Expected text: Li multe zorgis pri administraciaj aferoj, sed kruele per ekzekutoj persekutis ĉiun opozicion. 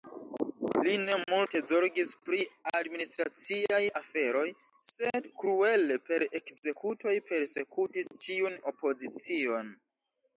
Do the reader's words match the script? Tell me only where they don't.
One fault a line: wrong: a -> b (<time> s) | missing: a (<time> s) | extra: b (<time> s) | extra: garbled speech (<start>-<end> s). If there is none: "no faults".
extra: ne (1.0 s)